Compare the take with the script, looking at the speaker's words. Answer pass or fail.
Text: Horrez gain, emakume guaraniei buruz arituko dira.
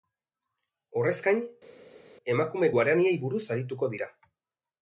pass